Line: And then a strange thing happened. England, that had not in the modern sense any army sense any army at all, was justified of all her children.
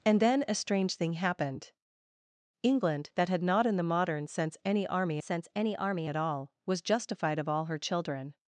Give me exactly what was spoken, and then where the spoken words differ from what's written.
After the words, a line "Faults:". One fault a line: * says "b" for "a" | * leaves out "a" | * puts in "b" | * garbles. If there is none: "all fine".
And then a strange thing happened. England, that had not in the modern sense any army sense any army at all, was justified of all her children.
Faults:
all fine